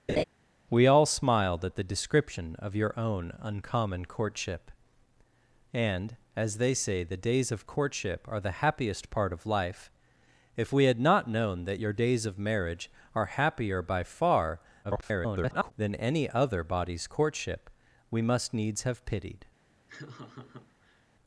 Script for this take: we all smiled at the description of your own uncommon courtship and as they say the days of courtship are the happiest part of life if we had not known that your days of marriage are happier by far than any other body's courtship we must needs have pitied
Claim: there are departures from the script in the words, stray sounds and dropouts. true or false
true